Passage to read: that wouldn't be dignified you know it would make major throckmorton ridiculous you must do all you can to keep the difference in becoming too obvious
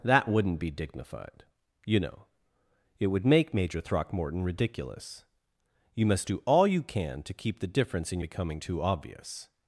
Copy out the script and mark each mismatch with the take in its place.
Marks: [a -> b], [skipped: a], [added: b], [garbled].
that wouldn't be dignified you know it would make major throckmorton ridiculous you must do all you can to keep the difference in becoming too obvious